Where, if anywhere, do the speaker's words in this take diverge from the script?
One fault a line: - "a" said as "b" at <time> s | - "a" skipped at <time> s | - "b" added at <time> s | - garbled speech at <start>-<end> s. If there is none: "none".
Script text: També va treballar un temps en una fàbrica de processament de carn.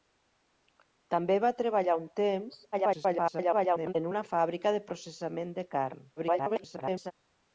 - garbled speech at 2.7-3.9 s
- garbled speech at 6.2-7.1 s